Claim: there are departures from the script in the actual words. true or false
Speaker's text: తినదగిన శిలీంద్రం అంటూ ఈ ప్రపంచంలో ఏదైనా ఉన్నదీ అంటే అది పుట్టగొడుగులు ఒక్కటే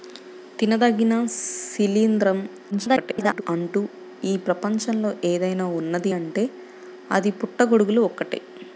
true